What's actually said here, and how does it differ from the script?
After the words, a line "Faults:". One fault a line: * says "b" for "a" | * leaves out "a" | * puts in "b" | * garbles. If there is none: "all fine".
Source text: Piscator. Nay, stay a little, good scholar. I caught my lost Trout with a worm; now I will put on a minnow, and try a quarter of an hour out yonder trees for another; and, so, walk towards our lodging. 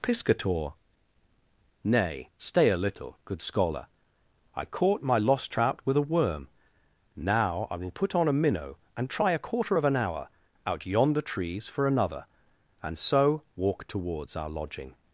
Piscator. Nay, stay a little, good scholar. I caught my lost Trout with a worm; now I will put on a minnow, and try a quarter of an hour out yonder trees for another; and, so, walk towards our lodging.
Faults:
all fine